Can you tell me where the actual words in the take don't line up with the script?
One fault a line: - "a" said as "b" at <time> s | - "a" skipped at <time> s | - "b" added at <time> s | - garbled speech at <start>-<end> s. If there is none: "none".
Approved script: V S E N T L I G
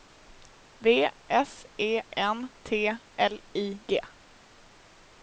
none